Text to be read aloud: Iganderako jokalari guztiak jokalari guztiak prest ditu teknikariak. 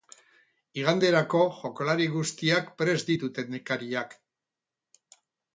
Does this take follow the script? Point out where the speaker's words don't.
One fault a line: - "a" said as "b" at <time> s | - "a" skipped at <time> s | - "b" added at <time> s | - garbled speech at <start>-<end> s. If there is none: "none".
- "jokalari guztiak" skipped at 2.7 s